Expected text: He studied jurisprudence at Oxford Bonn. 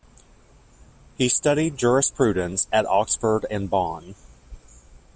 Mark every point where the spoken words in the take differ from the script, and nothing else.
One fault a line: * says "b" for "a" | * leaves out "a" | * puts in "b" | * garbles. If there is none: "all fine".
* puts in "and"